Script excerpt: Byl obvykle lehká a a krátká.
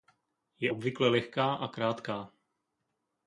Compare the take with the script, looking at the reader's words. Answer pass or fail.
fail